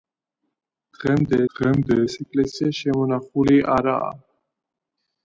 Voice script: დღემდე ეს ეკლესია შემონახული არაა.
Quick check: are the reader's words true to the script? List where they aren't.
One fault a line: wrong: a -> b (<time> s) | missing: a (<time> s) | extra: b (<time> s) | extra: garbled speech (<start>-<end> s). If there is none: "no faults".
extra: დღემდე (1.5 s)